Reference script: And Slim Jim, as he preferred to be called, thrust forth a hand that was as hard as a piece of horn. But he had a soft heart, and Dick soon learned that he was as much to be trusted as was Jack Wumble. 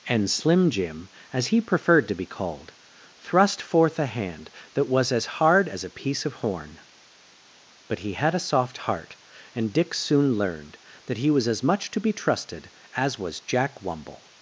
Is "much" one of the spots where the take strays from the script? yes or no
no